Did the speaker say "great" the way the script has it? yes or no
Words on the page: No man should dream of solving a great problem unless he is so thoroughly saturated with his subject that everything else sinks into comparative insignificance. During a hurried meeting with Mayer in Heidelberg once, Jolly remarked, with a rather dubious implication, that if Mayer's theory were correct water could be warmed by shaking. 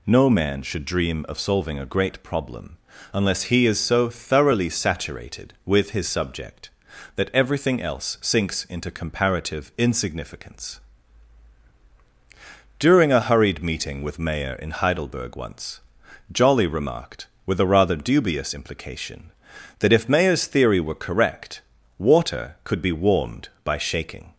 yes